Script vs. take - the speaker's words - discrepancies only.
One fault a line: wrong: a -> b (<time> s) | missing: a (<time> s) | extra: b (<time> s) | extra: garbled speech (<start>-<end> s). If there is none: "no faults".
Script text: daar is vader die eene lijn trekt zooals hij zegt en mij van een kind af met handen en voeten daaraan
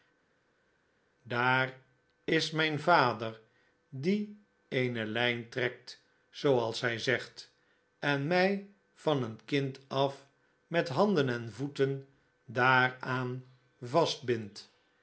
extra: mijn (2.5 s)